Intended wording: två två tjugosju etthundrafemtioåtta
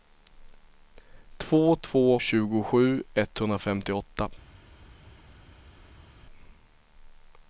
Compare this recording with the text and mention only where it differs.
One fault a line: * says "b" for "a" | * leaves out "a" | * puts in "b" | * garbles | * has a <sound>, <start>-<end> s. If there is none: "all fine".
all fine